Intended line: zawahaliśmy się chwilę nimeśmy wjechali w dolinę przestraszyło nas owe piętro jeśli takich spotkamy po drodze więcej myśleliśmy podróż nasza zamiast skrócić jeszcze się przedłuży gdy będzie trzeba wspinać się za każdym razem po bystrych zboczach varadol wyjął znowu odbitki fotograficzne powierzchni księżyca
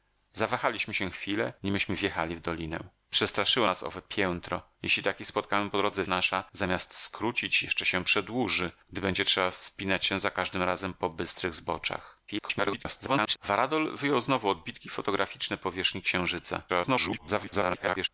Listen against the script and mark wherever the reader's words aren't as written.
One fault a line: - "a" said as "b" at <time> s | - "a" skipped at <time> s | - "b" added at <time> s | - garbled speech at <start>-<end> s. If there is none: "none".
- "więcej myśleliśmy podróż" skipped at 6.0 s
- garbled speech at 12.3-13.4 s
- garbled speech at 16.7-18.1 s